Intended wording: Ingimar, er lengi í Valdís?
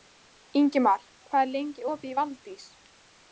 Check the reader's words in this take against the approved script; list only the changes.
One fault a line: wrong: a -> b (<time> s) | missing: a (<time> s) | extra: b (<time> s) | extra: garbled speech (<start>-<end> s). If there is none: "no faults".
extra: hvað (1.3 s)
extra: opið (1.9 s)